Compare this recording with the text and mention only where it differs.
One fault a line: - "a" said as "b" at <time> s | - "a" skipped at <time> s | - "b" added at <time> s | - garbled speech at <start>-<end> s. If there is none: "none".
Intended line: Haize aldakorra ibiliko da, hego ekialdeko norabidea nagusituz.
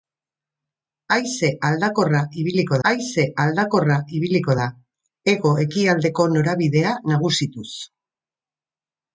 - "haize aldakorra ibiliko" added at 2.9 s